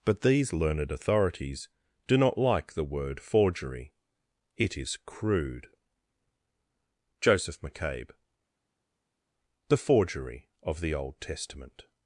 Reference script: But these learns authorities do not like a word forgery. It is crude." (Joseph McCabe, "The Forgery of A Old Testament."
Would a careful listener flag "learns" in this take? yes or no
yes